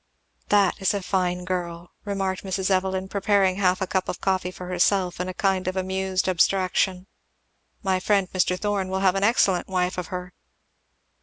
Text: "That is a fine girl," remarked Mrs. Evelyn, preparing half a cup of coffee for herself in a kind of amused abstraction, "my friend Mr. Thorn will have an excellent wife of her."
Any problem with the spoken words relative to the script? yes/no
no